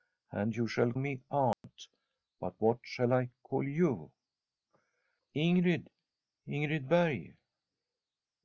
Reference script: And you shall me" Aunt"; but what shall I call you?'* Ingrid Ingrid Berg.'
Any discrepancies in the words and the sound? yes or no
yes